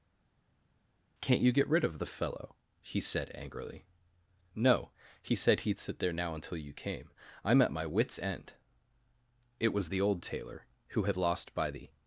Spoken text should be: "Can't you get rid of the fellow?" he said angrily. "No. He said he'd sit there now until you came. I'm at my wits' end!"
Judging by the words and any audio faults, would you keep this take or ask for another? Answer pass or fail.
fail